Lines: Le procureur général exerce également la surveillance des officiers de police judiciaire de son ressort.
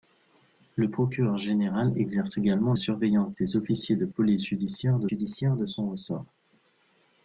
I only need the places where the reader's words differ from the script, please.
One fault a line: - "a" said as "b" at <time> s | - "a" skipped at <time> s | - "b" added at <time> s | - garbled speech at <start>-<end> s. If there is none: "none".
- "la" skipped at 2.7 s
- "judiciaire de" added at 5.1 s